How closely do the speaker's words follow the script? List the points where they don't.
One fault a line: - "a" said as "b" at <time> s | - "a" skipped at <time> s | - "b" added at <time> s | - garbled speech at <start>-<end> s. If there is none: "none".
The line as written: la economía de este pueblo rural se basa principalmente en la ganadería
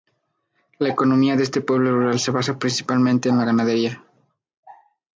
none